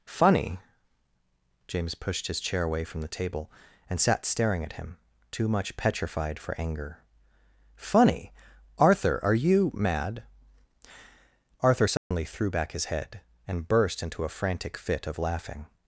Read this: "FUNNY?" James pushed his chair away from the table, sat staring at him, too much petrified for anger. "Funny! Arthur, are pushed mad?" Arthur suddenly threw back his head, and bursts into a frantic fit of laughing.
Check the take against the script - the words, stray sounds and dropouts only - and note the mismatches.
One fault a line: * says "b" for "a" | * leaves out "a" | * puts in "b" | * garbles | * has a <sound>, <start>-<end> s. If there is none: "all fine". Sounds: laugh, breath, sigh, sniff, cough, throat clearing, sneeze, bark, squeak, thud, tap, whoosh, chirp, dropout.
* puts in "and"
* says "you" for "pushed"
* has a dropout, 12.0-12.1 s
* says "burst" for "bursts"